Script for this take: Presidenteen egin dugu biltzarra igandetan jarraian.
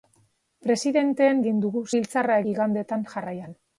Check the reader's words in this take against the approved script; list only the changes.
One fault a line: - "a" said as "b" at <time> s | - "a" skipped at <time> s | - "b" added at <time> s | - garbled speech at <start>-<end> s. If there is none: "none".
none